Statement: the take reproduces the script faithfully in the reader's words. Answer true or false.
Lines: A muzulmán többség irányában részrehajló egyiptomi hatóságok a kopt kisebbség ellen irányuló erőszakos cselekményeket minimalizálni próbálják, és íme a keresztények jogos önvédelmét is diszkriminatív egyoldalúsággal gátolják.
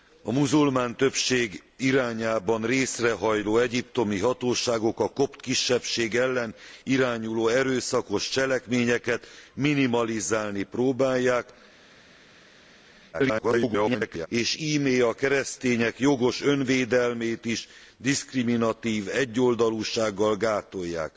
false